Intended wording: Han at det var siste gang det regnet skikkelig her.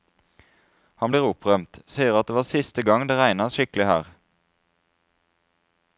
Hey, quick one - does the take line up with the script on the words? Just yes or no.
no